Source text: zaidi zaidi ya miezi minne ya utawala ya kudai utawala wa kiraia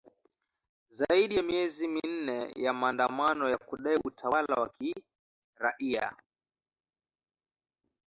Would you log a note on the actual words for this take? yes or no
yes